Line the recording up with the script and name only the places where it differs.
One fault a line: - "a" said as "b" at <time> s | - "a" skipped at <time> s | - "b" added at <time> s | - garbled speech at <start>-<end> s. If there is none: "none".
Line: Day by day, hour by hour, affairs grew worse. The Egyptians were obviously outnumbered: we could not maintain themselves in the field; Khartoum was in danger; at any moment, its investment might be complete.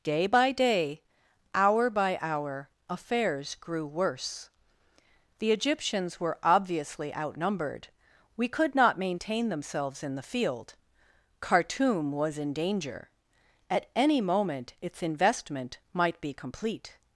none